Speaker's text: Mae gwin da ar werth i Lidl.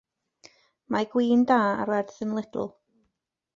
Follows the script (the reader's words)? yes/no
no